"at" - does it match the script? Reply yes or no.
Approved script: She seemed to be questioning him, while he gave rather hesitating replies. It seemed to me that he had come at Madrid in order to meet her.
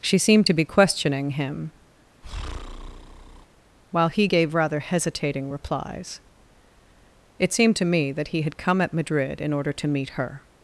yes